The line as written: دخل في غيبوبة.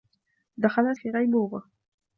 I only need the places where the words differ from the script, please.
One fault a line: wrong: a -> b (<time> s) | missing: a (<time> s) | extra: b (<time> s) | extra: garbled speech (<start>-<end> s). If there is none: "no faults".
no faults